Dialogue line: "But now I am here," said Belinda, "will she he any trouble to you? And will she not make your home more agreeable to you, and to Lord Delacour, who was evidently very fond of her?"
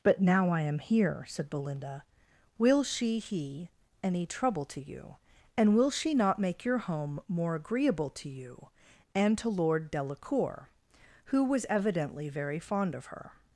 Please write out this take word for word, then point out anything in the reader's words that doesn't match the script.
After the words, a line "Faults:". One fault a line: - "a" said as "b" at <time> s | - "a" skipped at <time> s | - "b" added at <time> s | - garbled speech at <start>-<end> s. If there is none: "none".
"But now I am here," said Belinda, "will she he any trouble to you? And will she not make your home more agreeable to you, and to Lord Delacour, who was evidently very fond of her?"
Faults:
none